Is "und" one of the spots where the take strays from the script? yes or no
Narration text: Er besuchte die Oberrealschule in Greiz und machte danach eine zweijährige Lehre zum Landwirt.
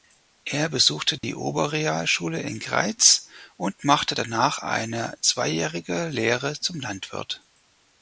no